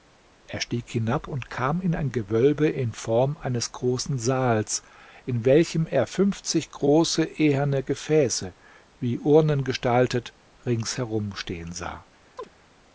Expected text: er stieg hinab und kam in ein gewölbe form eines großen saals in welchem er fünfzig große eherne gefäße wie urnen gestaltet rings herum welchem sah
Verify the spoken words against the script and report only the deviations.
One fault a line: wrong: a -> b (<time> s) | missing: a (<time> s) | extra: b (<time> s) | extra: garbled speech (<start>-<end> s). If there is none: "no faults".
extra: in (2.7 s)
wrong: welchem -> stehen (11.4 s)